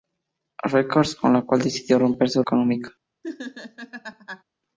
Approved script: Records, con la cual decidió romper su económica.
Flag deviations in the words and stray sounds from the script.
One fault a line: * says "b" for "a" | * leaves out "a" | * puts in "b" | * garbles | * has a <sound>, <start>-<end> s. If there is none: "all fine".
* has a laugh, 3.2-4.4 s